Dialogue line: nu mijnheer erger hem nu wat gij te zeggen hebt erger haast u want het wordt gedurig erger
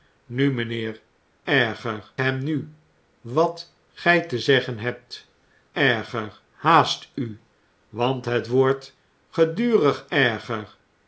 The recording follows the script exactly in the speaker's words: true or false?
true